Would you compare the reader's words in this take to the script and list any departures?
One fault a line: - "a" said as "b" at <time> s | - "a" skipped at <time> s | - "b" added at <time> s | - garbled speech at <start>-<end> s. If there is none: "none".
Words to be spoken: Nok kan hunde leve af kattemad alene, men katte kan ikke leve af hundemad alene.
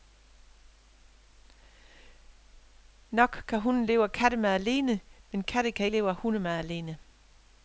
- "ikke" skipped at 5.9 s